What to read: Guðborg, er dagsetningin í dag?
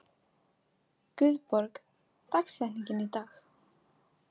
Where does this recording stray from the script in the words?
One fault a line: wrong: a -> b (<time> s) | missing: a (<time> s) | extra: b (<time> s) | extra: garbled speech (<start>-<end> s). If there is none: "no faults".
no faults